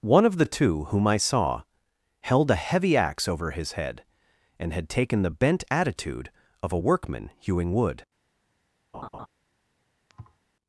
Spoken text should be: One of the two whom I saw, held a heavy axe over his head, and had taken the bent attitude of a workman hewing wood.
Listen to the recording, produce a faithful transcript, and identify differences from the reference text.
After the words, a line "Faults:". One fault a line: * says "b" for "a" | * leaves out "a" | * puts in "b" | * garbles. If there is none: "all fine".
One of the two whom I saw, held a heavy axe over his head, and had taken the bent attitude of a workman hewing wood.
Faults:
all fine